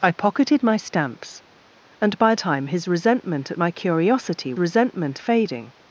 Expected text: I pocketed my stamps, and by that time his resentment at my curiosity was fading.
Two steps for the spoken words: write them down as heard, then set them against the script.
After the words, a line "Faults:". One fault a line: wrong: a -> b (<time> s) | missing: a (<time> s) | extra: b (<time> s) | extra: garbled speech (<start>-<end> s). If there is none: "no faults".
I pocketed my stamps, and by time his resentment at my curiosity resentment fading.
Faults:
missing: that (2.3 s)
wrong: was -> resentment (4.6 s)